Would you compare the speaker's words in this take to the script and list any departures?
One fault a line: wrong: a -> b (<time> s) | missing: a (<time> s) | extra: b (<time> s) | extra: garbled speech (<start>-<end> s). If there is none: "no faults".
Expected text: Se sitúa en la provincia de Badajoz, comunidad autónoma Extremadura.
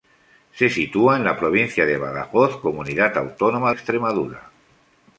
no faults